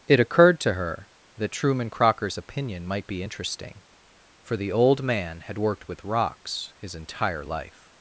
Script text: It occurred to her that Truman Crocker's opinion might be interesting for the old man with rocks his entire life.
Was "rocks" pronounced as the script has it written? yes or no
yes